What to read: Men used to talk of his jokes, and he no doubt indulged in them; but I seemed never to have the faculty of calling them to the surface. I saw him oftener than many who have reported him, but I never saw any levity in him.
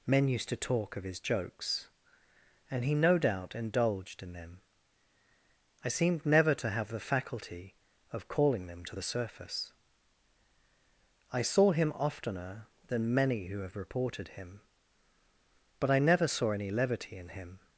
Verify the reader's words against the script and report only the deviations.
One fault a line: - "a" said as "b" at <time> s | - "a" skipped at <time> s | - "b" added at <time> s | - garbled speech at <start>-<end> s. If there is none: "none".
- "but" skipped at 4.6 s